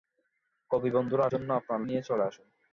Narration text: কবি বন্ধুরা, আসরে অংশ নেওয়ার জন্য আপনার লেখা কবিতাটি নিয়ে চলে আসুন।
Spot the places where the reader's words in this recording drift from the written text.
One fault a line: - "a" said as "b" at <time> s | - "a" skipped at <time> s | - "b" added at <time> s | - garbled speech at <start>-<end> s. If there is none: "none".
- "আসরে অংশ নেওয়ার" skipped at 1.2 s
- "লেখা কবিতাটি" skipped at 1.8 s